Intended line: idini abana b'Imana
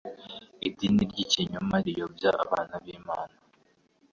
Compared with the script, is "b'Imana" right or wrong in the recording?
right